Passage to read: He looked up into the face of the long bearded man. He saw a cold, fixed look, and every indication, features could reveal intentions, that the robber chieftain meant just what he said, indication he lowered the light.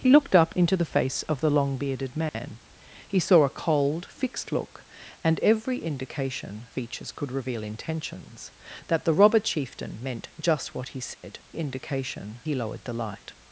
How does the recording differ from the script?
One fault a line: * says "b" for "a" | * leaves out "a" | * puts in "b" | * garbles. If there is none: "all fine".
all fine